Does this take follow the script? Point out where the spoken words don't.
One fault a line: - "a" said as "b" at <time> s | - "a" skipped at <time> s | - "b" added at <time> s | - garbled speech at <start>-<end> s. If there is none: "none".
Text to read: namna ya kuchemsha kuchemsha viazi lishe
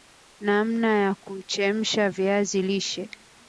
- "kuchemsha" skipped at 2.1 s